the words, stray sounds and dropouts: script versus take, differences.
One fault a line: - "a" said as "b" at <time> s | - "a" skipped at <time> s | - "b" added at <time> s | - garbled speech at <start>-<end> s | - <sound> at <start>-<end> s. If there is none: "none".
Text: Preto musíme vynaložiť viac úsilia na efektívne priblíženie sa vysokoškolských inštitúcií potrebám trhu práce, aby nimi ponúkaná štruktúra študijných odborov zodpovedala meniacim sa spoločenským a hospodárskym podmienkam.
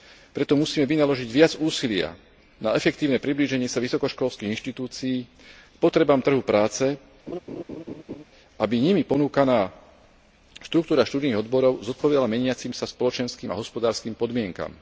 - laugh at 7.3-8.2 s